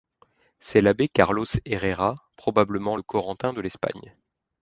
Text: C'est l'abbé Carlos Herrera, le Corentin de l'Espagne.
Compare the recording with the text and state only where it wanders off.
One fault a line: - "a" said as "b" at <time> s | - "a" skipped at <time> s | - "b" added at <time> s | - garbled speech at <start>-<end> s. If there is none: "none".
- "probablement" added at 2.4 s